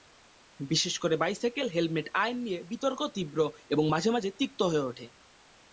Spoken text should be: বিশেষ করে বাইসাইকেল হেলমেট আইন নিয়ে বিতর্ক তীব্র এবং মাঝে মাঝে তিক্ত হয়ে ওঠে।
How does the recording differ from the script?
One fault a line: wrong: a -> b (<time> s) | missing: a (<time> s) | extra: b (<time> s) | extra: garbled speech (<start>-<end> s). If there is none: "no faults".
no faults